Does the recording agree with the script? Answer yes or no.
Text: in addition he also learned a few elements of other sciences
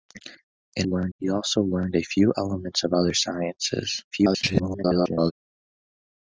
no